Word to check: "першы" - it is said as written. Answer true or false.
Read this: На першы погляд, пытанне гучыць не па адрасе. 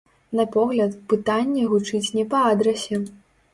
false